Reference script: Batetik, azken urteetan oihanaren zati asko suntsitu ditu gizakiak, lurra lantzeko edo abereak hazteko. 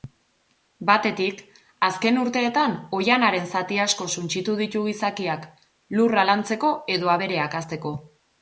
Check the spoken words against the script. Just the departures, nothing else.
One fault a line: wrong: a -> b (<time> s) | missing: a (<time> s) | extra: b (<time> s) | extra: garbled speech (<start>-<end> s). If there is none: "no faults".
no faults